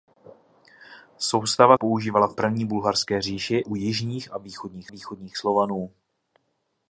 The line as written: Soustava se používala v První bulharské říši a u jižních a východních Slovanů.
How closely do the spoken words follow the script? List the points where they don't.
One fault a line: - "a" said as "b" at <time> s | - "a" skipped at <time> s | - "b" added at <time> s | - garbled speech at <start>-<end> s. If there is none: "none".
- "se" skipped at 1.8 s
- "a" skipped at 3.6 s
- "východních" added at 4.9 s